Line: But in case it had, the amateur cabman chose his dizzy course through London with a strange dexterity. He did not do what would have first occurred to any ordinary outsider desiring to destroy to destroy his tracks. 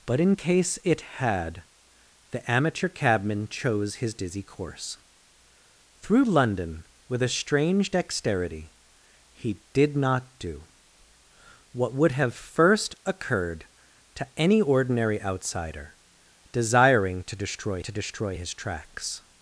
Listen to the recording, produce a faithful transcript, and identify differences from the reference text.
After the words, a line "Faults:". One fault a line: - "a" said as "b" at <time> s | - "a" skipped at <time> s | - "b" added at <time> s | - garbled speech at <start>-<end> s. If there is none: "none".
But in case it had, the amateur cabman chose his dizzy course through London with a strange dexterity. He did not do what would have first occurred to any ordinary outsider desiring to destroy to destroy his tracks.
Faults:
none